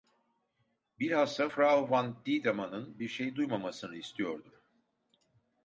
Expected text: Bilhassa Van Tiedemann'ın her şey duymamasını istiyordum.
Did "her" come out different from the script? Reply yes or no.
yes